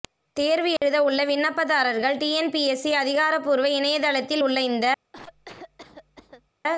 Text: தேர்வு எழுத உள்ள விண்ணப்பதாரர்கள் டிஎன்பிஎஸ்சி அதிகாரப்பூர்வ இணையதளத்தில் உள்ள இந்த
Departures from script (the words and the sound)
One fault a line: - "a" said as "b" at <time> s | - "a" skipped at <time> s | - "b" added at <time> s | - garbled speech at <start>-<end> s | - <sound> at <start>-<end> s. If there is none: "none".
- dropout at 0.8-0.8 s
- cough at 5.1-6.5 s